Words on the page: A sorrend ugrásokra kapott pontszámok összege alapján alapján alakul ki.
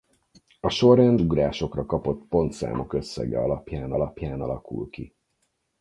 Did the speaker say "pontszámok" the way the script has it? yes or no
yes